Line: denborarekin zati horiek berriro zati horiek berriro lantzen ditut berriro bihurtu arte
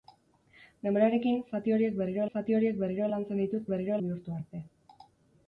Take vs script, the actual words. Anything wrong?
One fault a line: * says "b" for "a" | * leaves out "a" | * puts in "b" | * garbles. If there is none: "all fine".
all fine